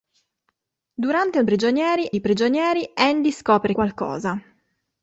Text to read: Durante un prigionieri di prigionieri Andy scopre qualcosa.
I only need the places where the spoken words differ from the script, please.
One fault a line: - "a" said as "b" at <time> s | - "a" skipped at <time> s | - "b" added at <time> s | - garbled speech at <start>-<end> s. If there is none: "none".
none